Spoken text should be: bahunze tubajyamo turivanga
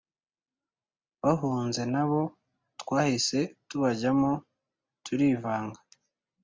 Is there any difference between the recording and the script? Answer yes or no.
yes